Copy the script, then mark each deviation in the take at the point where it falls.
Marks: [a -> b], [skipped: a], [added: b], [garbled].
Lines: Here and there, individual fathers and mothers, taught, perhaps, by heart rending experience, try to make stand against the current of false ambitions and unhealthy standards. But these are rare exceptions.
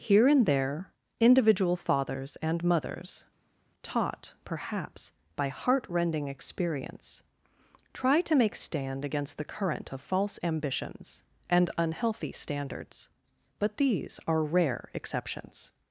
Here and there, individual fathers and mothers, taught, perhaps, by heart rending experience, try to make stand against the current of false ambitions and unhealthy standards. But these are rare exceptions.